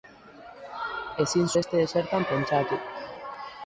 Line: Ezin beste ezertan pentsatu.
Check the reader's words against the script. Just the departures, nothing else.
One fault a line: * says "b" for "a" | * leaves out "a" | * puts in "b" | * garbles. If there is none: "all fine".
all fine